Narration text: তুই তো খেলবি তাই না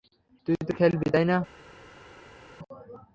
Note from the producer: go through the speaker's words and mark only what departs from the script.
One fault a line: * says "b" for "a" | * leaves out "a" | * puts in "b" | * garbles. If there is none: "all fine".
all fine